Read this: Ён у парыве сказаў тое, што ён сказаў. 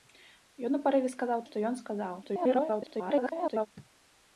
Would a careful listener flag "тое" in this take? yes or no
yes